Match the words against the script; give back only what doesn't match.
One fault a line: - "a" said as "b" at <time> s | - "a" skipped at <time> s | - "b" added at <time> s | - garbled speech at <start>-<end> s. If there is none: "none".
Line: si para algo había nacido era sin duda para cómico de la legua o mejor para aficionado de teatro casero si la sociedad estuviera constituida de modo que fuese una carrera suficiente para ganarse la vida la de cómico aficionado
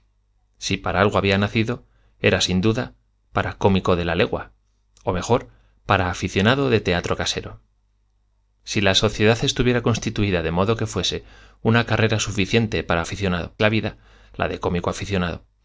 - "ganarse" said as "aficionado" at 13.0 s